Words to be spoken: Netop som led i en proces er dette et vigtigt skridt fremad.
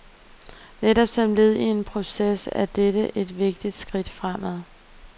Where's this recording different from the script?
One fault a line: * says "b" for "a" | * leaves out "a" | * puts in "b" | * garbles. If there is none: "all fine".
all fine